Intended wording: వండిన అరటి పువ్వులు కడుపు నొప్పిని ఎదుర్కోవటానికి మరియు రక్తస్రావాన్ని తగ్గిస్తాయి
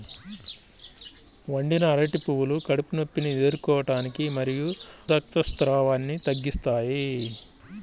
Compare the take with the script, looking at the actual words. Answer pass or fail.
pass